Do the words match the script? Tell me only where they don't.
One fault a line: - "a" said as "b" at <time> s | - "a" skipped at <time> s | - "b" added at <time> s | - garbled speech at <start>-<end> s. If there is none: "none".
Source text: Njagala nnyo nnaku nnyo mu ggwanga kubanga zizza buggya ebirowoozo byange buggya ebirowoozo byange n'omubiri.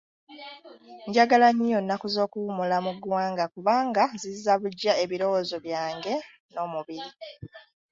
- "nnyo" said as "z'okuwummula" at 2.1 s
- "buggya ebirowoozo byange" skipped at 6.1 s